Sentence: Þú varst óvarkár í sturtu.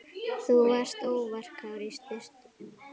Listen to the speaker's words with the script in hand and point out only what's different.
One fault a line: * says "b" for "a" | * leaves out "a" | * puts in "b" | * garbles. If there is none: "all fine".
all fine